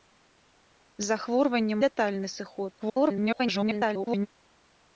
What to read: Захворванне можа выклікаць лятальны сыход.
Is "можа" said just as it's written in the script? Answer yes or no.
no